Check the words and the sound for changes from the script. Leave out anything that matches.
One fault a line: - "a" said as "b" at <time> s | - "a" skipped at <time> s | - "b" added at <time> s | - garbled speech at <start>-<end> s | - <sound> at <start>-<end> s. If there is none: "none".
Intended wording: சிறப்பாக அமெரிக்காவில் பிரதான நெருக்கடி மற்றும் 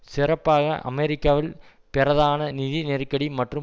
- "நிதி" added at 2.6 s